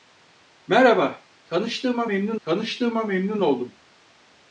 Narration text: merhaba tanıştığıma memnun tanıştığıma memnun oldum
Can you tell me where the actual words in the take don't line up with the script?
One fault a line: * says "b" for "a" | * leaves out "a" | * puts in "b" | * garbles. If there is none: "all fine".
all fine